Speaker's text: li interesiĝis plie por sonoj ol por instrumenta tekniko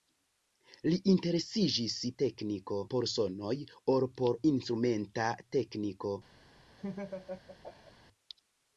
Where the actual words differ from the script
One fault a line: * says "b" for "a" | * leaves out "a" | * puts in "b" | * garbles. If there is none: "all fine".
* says "tekniko" for "plie"